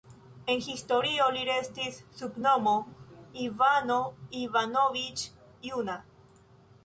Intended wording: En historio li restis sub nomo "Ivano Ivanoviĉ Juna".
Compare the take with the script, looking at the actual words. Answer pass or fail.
pass